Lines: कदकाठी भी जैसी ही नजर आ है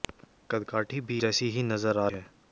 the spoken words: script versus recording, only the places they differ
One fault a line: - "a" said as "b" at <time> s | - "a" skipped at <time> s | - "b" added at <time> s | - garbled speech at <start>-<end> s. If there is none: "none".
none